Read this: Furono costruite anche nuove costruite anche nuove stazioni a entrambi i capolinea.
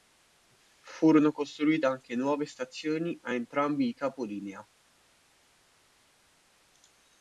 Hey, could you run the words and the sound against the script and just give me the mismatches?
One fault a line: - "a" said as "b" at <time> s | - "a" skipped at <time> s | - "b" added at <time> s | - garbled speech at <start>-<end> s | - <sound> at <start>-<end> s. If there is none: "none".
- "costruite anche nuove" skipped at 2.5 s